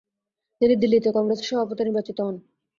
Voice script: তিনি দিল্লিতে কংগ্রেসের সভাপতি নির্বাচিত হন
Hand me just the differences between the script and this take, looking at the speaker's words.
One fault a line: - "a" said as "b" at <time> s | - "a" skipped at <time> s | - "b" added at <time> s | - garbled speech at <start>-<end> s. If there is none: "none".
none